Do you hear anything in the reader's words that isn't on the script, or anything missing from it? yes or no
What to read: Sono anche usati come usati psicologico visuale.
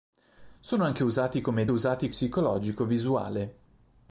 no